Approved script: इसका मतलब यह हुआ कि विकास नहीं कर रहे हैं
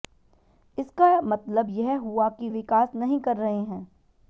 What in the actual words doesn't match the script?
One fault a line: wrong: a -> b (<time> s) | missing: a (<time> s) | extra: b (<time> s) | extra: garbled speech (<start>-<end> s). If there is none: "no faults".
no faults